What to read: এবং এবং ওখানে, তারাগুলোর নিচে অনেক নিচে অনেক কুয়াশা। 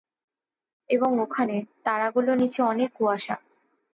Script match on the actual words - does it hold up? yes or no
no